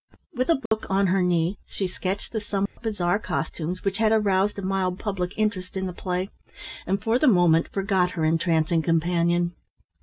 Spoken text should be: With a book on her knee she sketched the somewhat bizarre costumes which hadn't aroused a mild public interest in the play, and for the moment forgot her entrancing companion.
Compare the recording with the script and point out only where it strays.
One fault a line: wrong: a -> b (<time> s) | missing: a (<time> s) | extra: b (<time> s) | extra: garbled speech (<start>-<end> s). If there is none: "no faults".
wrong: hadn't -> had (4.0 s)